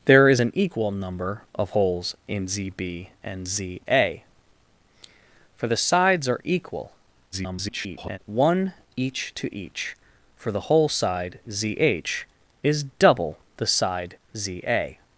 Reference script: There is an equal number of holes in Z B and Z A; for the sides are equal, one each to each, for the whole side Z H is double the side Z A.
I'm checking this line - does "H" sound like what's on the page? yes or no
yes